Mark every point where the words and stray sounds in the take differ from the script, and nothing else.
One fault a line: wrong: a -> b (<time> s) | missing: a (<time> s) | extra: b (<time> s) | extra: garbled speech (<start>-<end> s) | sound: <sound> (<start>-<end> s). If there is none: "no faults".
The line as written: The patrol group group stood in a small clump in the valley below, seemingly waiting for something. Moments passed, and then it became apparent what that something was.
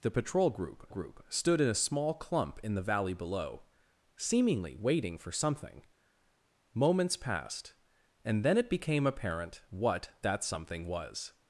no faults